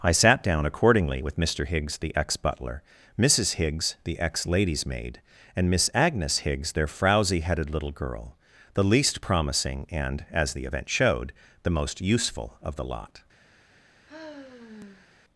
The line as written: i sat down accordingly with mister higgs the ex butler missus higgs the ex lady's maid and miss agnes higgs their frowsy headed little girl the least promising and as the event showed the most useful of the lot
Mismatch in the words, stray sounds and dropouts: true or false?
true